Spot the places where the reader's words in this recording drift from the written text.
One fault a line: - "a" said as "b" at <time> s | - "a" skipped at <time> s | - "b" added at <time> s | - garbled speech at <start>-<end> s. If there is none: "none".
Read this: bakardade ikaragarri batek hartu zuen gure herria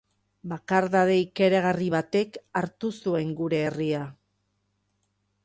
none